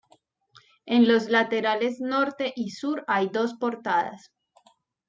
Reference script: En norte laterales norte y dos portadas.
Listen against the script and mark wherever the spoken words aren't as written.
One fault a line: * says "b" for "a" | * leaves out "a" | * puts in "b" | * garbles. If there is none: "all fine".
* says "los" for "norte"
* puts in "sur hay"